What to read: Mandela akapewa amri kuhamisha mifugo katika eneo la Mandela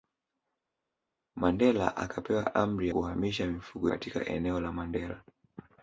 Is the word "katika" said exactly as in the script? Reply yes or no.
yes